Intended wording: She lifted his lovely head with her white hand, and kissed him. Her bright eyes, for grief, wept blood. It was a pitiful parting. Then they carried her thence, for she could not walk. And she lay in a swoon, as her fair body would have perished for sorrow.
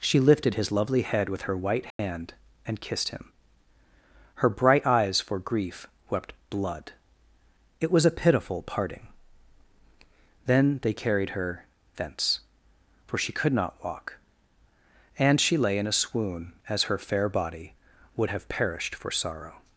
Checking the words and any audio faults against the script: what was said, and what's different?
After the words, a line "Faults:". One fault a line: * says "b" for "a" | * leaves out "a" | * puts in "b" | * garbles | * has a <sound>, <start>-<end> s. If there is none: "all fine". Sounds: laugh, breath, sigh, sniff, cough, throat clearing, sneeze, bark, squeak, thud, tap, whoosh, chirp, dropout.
She lifted his lovely head with her white hand, and kissed him. Her bright eyes, for grief, wept blood. It was a pitiful parting. Then they carried her thence, for she could not walk. And she lay in a swoon, as her fair body would have perished for sorrow.
Faults:
* has a dropout, 1.9-2.0 s